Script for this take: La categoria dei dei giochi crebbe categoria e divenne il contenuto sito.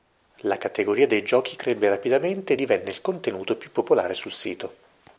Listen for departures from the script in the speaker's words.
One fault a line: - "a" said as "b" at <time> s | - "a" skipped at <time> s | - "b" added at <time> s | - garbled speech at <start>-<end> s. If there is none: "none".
- "dei" skipped at 1.2 s
- "categoria" said as "rapidamente" at 1.9 s
- "più popolare sul" added at 3.6 s